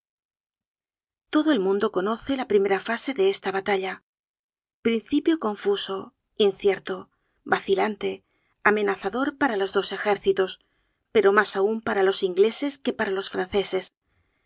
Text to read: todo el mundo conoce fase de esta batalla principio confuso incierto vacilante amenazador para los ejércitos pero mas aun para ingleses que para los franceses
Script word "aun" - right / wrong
right